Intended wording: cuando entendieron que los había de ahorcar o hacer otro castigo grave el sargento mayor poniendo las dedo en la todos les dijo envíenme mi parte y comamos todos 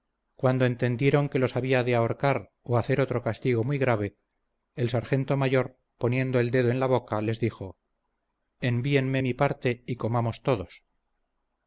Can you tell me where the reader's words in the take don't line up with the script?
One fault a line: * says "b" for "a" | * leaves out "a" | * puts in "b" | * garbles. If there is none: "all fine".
* puts in "muy"
* says "el" for "las"
* says "boca" for "todos"